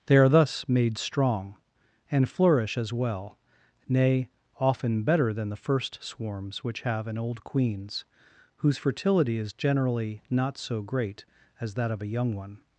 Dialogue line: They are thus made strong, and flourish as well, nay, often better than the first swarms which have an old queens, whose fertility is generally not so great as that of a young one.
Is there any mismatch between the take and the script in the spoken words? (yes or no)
no